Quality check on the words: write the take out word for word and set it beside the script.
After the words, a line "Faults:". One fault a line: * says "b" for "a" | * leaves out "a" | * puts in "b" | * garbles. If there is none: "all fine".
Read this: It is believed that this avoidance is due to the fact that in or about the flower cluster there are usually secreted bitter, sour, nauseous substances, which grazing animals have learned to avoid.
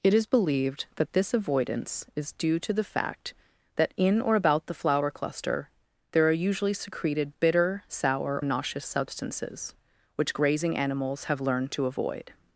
It is believed that this avoidance is due to the fact that in or about the flower cluster there are usually secreted bitter, sour, nauseous substances, which grazing animals have learned to avoid.
Faults:
all fine